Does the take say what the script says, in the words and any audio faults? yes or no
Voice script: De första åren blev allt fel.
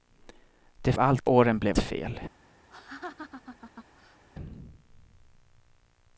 no